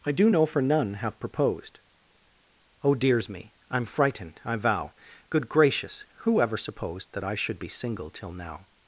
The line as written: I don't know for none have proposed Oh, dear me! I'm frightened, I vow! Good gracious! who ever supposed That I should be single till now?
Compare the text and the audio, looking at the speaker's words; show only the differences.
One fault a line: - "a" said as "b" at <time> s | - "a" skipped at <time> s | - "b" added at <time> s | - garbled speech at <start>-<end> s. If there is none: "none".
- "don't" said as "do" at 0.1 s
- "dear" said as "dears" at 2.9 s